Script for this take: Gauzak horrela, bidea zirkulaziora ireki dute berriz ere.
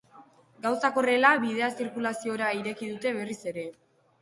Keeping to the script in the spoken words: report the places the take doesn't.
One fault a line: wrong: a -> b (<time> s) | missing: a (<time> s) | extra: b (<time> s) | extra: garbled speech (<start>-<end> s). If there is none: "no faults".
no faults